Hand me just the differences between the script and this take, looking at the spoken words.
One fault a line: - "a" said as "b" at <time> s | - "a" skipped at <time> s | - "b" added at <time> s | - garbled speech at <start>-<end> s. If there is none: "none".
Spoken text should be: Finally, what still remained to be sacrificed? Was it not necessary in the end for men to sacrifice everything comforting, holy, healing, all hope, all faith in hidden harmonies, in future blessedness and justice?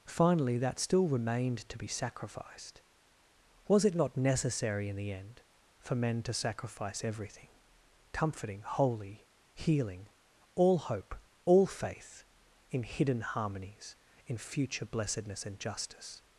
- "what" said as "that" at 0.6 s